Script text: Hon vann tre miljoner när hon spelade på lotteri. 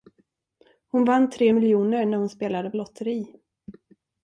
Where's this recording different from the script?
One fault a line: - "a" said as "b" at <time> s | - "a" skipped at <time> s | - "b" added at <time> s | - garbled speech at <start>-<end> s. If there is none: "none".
- "på" skipped at 2.7 s